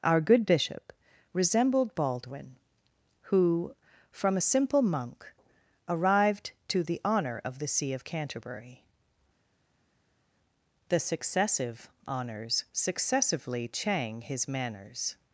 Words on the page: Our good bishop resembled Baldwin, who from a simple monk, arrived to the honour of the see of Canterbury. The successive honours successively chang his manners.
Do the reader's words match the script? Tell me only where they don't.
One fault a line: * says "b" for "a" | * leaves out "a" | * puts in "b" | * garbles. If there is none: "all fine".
all fine